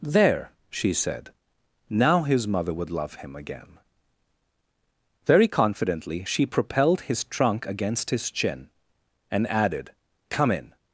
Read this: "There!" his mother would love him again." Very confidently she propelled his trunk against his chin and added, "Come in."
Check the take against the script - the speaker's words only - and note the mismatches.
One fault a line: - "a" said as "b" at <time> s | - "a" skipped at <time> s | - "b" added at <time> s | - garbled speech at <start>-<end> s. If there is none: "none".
- "she said Now" added at 0.7 s